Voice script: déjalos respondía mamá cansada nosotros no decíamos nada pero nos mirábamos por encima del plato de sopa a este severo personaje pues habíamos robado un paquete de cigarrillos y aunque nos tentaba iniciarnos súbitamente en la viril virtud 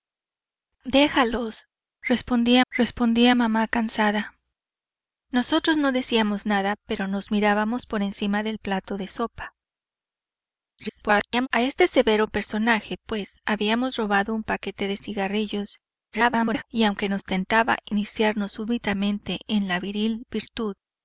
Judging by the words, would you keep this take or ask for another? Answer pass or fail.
fail